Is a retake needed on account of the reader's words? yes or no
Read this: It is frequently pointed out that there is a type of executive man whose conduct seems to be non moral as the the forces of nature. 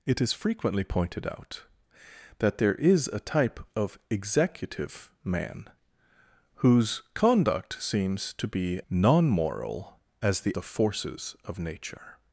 no